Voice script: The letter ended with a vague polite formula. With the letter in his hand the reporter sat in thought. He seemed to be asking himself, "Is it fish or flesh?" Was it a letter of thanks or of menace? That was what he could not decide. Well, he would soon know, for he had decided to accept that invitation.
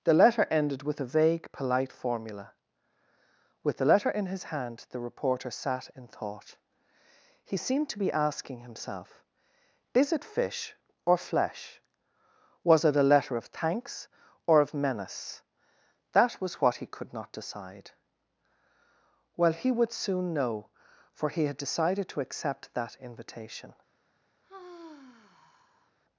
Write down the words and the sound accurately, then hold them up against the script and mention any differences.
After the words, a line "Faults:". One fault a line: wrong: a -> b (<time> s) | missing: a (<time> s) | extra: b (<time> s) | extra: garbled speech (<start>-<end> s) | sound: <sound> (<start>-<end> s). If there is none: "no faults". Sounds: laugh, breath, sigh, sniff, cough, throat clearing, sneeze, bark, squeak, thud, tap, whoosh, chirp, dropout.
The letter ended with a vague polite formula. With the letter in his hand the reporter sat in thought. He seemed to be asking himself, "Is it fish or flesh?" Was it a letter of thanks or of menace? That was what he could not decide. Well, he would soon know, for he had decided to accept that invitation.
Faults:
sound: sigh (24.4-25.9 s)